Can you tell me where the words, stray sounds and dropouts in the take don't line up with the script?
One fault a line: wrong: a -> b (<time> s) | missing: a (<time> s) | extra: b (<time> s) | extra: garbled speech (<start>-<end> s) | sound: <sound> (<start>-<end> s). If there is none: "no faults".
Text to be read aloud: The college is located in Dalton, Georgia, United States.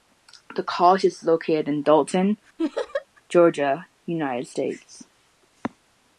sound: laugh (2.6-3.1 s)